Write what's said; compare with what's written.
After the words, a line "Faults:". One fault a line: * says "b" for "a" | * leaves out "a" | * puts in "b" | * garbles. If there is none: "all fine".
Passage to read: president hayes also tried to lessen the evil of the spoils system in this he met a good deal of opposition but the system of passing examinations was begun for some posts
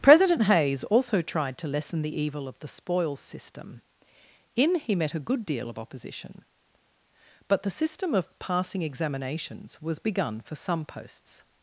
president hayes also tried to lessen the evil of the spoils system in he met a good deal of opposition but the system of passing examinations was begun for some posts
Faults:
* leaves out "this"